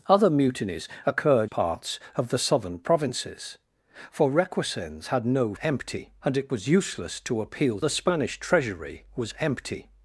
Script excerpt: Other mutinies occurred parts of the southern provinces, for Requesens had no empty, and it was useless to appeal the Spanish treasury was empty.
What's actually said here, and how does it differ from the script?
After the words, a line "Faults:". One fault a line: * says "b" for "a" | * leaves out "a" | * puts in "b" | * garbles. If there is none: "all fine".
Other mutinies occurred parts of the southern provinces, for Requesens had no empty, and it was useless to appeal the Spanish treasury was empty.
Faults:
all fine